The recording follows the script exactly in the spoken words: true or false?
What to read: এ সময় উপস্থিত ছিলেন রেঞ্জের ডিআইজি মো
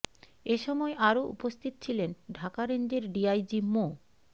false